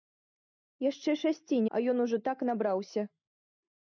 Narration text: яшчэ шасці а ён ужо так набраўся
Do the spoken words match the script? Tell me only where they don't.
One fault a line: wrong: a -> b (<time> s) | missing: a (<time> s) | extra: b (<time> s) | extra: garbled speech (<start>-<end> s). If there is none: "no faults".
no faults